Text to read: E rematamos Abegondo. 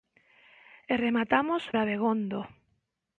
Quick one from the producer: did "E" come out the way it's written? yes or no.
yes